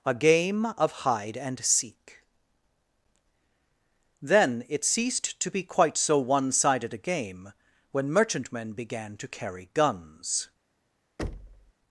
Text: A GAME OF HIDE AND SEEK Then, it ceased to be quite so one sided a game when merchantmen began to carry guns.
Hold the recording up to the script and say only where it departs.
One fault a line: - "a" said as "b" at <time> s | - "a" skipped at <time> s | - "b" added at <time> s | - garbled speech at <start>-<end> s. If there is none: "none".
none